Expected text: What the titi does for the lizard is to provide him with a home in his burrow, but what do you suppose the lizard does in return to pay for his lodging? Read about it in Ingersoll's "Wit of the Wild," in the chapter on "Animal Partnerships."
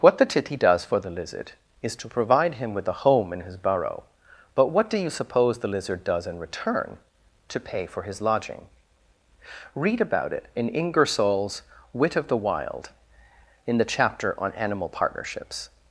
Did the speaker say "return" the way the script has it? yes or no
yes